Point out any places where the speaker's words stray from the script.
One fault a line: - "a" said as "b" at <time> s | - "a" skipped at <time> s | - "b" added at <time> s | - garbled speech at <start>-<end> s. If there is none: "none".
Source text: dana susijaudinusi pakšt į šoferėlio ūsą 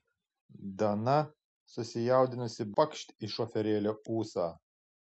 none